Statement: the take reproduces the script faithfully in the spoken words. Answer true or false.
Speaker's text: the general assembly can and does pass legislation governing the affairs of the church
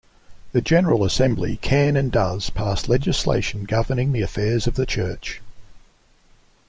true